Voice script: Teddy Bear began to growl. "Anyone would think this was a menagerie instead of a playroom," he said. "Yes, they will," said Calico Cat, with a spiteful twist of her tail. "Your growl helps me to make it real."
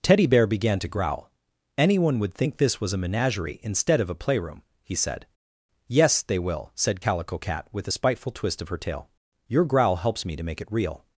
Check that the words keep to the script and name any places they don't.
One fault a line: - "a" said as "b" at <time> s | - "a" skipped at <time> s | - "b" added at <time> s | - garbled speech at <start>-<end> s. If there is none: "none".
none